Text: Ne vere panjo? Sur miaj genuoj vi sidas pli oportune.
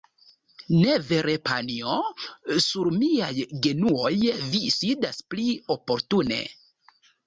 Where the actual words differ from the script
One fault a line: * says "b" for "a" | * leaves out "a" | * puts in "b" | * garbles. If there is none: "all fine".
all fine